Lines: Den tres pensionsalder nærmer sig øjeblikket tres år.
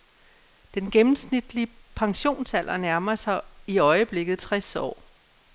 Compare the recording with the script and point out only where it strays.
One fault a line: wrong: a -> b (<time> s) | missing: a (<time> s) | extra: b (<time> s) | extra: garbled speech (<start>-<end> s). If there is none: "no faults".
wrong: tres -> gennemsnitlige (0.9 s)
extra: i (3.7 s)